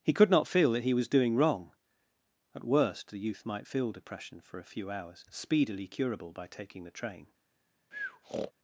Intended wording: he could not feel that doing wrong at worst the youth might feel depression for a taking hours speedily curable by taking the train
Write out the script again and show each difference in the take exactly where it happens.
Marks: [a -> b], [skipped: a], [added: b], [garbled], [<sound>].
he could not feel that [added: he was] doing wrong at worst the youth might feel depression for a [taking -> few] hours speedily curable by taking the train [breath]